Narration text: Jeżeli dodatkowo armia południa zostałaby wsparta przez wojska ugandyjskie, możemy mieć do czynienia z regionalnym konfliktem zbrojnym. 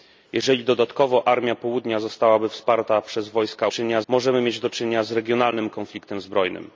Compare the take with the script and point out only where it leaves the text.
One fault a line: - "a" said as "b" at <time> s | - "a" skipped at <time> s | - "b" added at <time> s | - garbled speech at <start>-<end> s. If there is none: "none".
- "ugandyjskie" said as "czynienia" at 3.7 s